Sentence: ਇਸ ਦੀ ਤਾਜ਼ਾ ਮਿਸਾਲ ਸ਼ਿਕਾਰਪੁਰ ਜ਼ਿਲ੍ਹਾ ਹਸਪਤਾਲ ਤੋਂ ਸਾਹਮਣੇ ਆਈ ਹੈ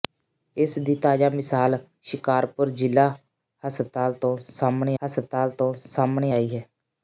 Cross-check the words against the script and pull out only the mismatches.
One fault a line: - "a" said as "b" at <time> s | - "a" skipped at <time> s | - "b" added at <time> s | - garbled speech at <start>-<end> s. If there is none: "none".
- "ਹਸਪਤਾਲ ਤੋਂ ਸਾਹਮਣੇ" added at 5.0 s